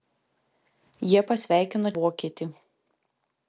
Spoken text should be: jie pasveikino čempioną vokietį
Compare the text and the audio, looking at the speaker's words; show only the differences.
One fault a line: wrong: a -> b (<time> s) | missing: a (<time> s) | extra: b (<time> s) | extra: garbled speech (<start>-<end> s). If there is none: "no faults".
missing: čempioną (1.9 s)